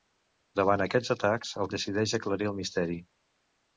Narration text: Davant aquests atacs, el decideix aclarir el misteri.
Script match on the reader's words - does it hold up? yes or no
yes